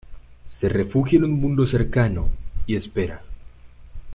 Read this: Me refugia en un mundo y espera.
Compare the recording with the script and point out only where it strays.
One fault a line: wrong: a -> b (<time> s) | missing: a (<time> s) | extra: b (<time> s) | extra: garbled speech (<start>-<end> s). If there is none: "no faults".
wrong: Me -> Se (0.5 s)
extra: cercano (1.7 s)